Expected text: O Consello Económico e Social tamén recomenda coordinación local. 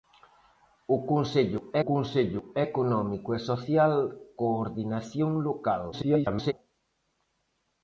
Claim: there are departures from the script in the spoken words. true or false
true